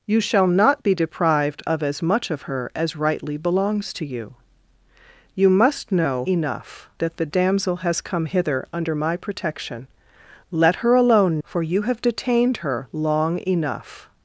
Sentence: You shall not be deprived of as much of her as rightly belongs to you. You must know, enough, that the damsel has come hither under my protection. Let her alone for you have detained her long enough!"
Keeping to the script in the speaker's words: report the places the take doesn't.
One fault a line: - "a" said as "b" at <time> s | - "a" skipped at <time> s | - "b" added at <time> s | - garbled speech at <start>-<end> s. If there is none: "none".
none